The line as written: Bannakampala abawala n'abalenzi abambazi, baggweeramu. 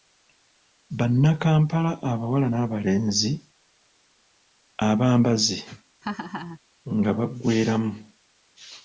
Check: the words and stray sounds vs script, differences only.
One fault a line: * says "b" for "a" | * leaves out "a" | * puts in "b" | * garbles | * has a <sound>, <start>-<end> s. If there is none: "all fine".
* has a laugh, 6.0-6.6 s
* puts in "nga"